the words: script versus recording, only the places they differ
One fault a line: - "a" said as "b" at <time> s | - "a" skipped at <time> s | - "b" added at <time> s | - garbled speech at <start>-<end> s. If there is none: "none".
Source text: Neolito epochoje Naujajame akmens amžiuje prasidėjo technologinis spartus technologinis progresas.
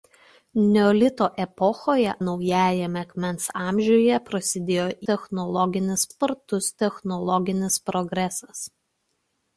none